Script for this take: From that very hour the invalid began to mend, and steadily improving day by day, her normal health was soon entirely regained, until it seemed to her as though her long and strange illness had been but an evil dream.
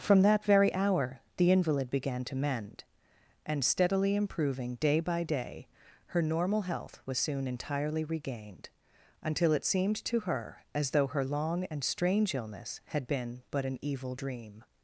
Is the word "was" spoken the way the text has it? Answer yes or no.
yes